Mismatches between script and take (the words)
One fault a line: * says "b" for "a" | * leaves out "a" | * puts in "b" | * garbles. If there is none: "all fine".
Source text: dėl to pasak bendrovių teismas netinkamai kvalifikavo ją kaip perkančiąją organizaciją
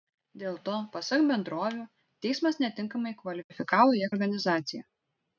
* leaves out "kaip perkančiąją"